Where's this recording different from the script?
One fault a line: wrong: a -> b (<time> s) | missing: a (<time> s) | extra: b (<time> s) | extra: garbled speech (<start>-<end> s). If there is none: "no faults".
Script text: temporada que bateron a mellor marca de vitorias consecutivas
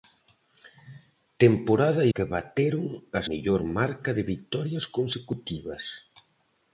no faults